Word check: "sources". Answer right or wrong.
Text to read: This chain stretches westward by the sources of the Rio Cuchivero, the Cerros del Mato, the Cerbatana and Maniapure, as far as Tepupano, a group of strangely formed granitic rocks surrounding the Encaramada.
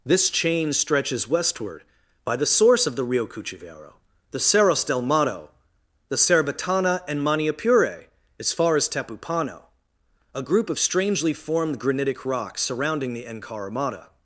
wrong